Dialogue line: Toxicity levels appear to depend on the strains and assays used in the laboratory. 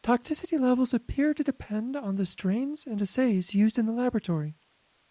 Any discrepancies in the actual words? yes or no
no